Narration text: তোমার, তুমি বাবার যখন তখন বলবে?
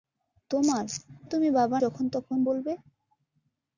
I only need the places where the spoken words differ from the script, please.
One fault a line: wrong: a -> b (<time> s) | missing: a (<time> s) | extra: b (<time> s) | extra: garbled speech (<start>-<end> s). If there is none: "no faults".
no faults